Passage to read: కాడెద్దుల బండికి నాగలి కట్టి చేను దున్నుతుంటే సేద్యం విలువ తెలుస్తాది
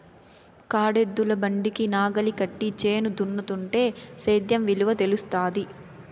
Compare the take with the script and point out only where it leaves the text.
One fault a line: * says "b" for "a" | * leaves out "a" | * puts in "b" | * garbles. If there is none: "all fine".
all fine